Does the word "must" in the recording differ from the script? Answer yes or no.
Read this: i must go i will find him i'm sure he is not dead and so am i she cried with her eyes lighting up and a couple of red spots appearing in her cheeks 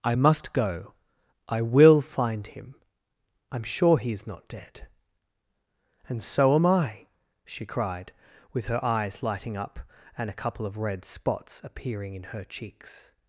no